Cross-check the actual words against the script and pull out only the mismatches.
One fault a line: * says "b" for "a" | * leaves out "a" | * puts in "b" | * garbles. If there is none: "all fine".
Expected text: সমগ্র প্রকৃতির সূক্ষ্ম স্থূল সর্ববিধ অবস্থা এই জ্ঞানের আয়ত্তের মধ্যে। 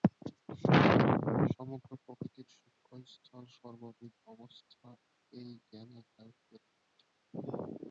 all fine